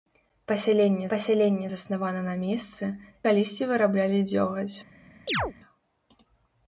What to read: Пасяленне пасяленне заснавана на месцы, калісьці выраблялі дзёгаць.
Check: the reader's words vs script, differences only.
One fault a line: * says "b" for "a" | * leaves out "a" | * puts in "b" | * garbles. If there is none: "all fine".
all fine